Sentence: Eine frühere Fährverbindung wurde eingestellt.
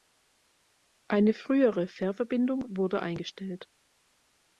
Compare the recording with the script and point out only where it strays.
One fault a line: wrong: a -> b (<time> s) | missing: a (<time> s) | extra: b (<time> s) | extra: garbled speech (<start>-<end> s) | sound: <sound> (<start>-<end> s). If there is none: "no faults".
no faults